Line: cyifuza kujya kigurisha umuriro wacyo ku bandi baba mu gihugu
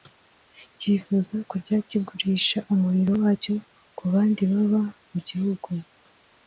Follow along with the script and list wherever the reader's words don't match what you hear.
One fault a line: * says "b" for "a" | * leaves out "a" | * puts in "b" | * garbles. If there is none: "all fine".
all fine